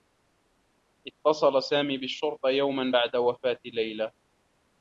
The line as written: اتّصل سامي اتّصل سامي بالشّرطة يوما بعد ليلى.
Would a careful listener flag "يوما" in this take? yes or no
no